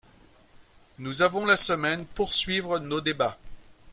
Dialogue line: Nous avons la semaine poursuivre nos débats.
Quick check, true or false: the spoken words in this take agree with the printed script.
true